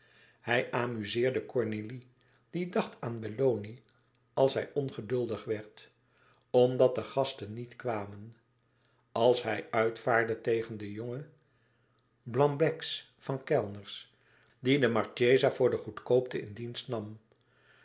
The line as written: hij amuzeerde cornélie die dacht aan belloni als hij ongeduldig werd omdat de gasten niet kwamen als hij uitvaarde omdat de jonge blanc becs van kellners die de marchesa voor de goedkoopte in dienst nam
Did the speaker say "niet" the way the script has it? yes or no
yes